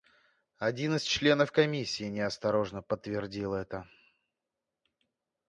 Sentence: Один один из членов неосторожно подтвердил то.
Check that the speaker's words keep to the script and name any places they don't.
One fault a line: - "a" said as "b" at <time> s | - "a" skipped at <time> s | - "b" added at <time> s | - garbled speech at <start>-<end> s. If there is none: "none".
- "один" skipped at 0.9 s
- "комиссии" added at 1.5 s
- "то" said as "это" at 3.5 s